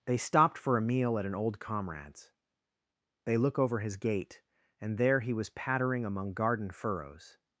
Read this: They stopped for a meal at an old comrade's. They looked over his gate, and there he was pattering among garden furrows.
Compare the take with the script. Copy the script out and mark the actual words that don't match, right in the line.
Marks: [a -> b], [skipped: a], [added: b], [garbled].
They stopped for a meal at an old comrade's. They [looked -> look] over his gate, and there he was pattering among garden furrows.